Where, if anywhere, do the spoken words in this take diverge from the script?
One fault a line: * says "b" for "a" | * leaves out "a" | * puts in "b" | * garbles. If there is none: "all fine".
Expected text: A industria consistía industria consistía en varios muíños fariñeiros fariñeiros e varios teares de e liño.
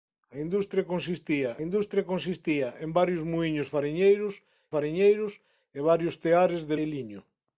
all fine